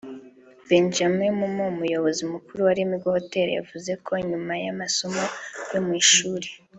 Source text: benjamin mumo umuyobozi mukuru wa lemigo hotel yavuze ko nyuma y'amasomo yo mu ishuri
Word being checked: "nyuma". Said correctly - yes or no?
yes